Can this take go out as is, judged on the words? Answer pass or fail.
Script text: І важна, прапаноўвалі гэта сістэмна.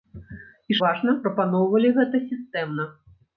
pass